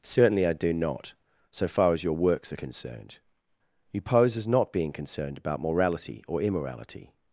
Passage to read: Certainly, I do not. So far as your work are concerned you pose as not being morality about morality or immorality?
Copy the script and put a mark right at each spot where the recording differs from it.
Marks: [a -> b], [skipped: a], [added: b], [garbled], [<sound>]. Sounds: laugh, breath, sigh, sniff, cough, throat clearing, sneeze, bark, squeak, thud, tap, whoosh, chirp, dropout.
Certainly, I do not. So far as your [work -> works] are concerned you pose as not being [morality -> concerned] about morality or immorality?